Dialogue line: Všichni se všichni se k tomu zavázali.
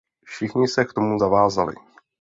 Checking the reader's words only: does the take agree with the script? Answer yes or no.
no